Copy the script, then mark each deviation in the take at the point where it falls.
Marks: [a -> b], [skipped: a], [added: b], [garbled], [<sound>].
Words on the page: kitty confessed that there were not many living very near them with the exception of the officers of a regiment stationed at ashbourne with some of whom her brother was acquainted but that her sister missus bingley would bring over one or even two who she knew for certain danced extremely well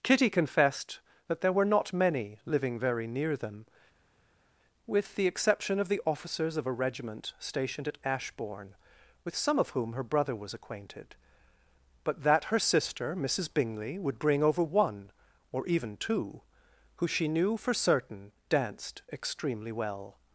kitty confessed that there were not many living very near them with the exception of the officers of a regiment stationed at ashbourne with some of whom her brother was acquainted but that her sister missus bingley would bring over one or even two who she knew for certain danced extremely well